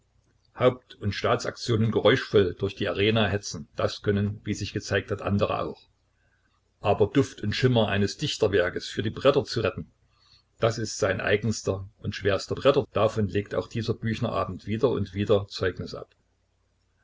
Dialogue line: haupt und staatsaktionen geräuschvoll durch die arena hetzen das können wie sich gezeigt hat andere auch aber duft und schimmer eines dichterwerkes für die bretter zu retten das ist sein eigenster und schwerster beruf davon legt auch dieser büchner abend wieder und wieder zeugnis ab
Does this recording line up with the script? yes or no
no